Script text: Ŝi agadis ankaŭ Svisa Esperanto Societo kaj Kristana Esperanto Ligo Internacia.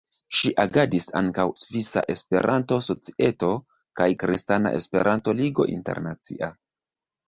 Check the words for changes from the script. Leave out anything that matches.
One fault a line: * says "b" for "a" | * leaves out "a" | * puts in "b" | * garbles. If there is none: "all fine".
all fine